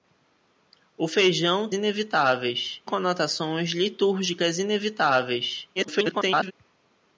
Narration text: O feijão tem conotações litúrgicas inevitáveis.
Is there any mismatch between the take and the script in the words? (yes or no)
yes